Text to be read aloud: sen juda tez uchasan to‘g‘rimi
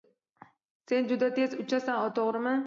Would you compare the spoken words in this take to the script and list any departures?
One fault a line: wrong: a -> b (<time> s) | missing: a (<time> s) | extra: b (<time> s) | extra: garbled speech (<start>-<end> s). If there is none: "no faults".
no faults